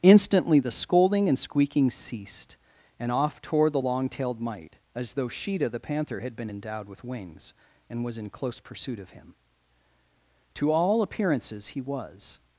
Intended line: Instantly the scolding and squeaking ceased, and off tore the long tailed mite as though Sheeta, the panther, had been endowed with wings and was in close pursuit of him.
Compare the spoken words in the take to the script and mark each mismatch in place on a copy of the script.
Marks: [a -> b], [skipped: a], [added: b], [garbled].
Instantly the scolding and squeaking ceased, and off tore the long tailed mite as though Sheeta, the panther, had been endowed with wings and was in close pursuit of him. [added: To all appearances he was]